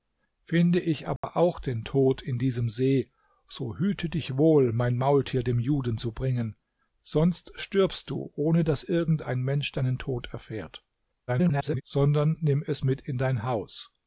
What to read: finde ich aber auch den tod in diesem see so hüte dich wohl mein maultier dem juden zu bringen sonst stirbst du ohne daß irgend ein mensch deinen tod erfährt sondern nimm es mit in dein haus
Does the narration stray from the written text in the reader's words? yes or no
yes